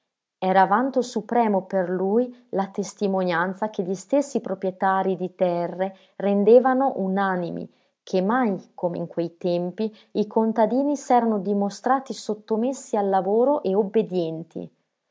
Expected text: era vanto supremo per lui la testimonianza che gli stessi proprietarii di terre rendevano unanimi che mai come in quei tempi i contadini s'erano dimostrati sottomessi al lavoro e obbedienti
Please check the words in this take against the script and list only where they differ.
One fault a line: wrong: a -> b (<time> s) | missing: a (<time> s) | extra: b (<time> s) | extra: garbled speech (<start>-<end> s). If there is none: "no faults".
no faults